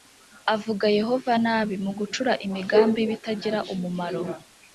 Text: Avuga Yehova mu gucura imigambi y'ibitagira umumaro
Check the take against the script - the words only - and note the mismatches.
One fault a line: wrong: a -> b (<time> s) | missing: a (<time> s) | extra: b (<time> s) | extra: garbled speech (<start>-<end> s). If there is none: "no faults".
extra: nabi (1.4 s)